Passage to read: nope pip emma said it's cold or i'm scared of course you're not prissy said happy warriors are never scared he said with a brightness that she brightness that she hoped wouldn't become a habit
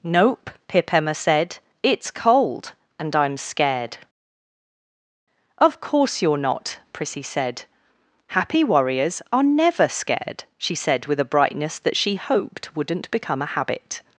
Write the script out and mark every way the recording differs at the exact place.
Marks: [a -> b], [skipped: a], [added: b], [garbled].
nope pip emma said it's cold [or -> and] i'm scared of course you're not prissy said happy warriors are never scared [he -> she] said with a brightness that she [skipped: brightness that she] hoped wouldn't become a habit